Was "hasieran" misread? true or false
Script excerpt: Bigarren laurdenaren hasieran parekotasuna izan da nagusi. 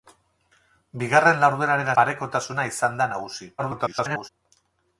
true